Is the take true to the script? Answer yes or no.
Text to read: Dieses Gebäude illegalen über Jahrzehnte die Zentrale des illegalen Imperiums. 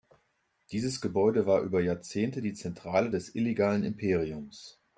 no